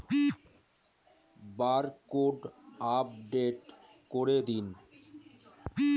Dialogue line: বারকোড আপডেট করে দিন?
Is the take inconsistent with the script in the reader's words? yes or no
no